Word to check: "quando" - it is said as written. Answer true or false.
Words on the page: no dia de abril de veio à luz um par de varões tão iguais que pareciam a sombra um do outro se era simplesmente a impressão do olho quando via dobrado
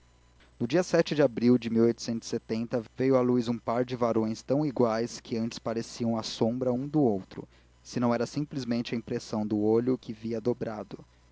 false